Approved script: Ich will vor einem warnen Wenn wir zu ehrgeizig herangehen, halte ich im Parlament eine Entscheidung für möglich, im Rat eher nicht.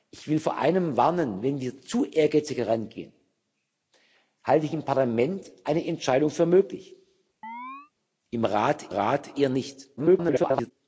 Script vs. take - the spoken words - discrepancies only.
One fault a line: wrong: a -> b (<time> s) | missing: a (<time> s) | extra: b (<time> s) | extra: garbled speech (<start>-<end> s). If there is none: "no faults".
extra: Rat (8.9 s)
extra: garbled speech (10.0-10.7 s)